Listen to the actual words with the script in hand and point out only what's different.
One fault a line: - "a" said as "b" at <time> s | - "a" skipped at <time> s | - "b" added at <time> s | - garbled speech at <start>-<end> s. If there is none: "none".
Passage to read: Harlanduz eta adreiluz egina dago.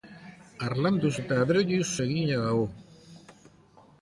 none